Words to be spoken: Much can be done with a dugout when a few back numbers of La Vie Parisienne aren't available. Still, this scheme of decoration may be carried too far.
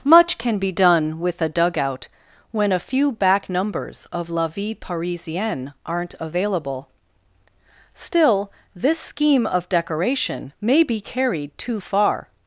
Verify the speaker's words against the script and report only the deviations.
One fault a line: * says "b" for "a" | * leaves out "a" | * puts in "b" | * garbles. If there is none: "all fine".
all fine